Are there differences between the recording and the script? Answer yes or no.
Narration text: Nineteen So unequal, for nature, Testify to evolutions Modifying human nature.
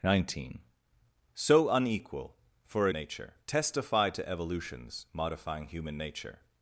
no